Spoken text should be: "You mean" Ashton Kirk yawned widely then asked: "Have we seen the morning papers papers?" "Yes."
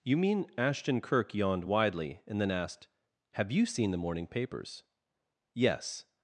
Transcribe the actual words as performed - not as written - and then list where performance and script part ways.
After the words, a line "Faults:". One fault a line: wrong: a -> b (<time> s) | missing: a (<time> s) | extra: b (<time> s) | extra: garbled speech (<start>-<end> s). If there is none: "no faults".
"You mean" Ashton Kirk yawned widely and then asked: "Have you seen the morning papers?" "Yes."
Faults:
extra: and (2.3 s)
wrong: we -> you (3.5 s)
missing: papers (4.8 s)